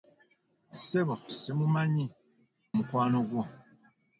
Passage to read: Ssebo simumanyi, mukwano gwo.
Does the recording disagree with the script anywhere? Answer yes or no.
no